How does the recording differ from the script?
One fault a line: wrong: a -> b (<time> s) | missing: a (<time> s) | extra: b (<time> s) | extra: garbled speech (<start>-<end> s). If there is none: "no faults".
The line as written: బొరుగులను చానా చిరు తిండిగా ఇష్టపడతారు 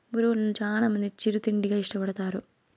extra: మంది (0.9 s)